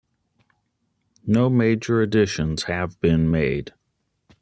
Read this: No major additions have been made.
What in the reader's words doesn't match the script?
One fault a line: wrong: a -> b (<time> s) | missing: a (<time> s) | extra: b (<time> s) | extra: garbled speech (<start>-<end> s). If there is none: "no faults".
no faults